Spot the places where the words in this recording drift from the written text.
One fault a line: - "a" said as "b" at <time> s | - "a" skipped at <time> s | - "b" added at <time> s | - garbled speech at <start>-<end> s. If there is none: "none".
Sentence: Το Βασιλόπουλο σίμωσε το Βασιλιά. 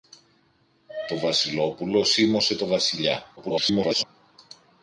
- garbled speech at 3.4-4.0 s